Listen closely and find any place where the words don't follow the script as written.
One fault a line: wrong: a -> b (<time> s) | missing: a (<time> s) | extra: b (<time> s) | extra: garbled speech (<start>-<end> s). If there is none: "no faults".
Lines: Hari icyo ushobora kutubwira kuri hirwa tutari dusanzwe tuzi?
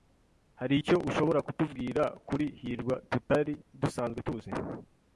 no faults